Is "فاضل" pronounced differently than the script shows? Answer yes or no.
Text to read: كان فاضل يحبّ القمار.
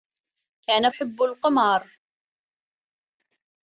yes